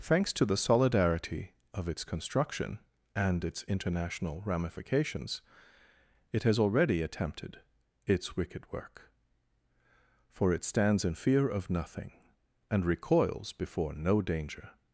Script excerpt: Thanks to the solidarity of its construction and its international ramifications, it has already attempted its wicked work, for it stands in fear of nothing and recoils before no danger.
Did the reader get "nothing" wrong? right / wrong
right